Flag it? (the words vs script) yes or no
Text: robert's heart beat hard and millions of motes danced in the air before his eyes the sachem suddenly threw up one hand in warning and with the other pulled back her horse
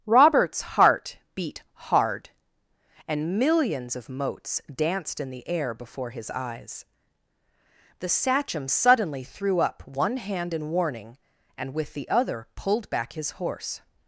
yes